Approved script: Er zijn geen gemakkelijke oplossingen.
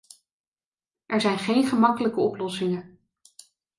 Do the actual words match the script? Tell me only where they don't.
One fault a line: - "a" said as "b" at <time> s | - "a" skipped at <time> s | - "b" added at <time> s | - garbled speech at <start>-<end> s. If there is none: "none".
none